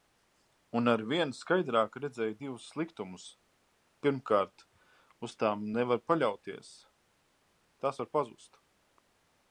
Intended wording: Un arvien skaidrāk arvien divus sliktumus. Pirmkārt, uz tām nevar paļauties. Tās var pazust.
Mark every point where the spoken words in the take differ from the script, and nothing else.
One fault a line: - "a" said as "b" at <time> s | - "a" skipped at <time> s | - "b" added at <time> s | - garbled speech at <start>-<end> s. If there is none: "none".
- "arvien" said as "redzēju" at 2.0 s